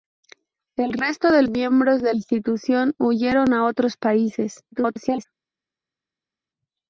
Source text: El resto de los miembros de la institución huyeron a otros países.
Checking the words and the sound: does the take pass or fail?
fail